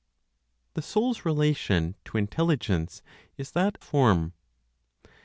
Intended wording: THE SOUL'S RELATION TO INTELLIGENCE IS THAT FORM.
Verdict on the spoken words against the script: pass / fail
pass